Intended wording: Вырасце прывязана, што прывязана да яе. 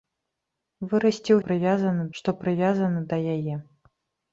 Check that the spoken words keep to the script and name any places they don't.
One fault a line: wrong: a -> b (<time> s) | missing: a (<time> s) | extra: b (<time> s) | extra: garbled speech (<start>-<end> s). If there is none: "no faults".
no faults